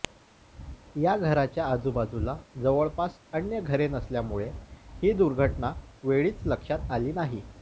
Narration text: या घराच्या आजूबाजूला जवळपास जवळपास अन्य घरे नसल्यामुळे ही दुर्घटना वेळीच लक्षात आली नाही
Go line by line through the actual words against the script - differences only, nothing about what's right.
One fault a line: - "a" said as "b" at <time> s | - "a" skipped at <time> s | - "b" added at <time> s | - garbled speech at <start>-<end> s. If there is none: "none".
- "जवळपास" skipped at 3.2 s